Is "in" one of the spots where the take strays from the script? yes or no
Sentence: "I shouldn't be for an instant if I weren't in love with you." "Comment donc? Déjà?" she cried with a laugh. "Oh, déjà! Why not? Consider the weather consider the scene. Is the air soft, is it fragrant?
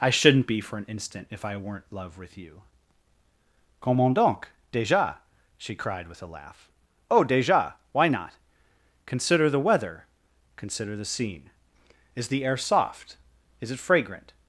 yes